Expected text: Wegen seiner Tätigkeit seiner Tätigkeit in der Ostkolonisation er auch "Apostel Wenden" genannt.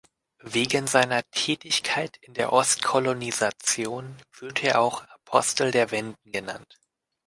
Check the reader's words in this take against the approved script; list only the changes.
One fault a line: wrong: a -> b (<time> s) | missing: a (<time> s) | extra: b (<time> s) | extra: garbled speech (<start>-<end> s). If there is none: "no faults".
missing: seiner Tätigkeit (2.2 s)
extra: wird (4.4 s)
extra: der (5.7 s)